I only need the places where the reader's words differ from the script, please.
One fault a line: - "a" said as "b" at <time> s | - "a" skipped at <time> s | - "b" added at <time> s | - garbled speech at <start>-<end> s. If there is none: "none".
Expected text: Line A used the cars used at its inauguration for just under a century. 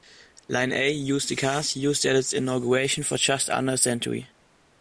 none